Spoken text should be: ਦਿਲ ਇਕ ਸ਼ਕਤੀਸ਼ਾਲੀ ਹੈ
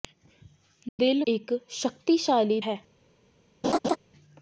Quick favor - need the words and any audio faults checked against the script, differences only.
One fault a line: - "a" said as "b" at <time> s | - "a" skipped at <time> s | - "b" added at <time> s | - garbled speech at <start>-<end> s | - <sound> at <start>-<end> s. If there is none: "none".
- dropout at 0.9-1.0 s
- laugh at 3.6-4.0 s